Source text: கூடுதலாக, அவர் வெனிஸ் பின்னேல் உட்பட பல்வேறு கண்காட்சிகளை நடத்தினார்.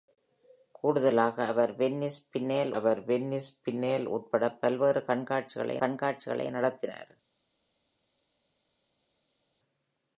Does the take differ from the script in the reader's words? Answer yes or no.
yes